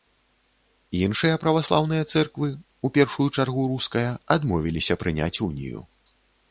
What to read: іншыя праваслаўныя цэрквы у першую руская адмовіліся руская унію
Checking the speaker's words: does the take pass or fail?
fail